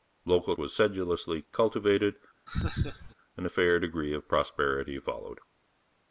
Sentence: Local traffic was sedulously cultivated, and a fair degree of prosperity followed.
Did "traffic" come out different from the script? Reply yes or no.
yes